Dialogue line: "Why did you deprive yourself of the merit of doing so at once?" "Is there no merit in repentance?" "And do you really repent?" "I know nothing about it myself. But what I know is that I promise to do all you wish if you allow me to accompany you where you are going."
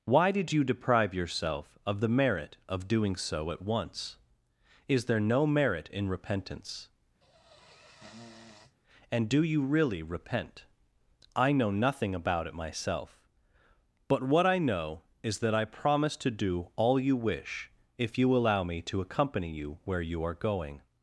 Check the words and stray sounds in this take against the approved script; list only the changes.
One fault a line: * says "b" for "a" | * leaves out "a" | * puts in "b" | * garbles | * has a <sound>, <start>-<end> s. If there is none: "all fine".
* has a sniff, 7.2-8.8 s